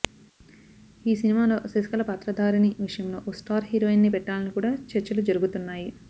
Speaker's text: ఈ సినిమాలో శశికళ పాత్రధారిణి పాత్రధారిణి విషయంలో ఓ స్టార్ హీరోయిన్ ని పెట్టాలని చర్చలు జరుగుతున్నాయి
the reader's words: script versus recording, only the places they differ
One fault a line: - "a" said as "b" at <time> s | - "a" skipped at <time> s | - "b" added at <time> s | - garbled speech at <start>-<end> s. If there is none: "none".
- "పాత్రధారిణి" skipped at 2.7 s
- "కూడా" added at 4.6 s